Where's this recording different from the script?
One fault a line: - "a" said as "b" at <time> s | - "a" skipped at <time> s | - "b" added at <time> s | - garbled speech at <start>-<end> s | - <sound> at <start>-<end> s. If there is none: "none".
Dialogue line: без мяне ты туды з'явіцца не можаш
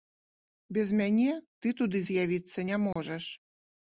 - dropout at 2.9-3.0 s